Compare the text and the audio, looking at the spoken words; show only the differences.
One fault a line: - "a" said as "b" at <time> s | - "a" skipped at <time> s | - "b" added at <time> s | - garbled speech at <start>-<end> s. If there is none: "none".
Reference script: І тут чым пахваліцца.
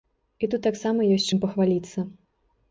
- "таксама ёсць" added at 0.7 s